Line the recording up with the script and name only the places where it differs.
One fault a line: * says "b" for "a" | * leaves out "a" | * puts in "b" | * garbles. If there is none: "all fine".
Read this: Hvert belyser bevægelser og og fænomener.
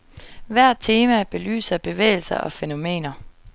* puts in "tema"
* leaves out "og"